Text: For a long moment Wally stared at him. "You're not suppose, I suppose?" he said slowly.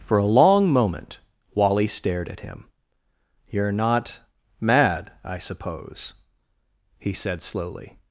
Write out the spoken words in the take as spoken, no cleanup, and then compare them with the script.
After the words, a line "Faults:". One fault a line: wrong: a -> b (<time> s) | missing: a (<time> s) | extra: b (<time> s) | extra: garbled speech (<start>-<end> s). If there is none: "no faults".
For a long moment Wally stared at him. "You're not mad, I suppose?" he said slowly.
Faults:
wrong: suppose -> mad (4.6 s)